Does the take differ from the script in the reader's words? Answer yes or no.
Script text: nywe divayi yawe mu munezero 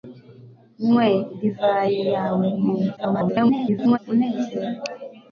yes